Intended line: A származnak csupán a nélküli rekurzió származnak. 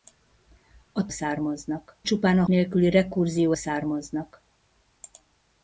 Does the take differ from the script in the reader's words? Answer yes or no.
no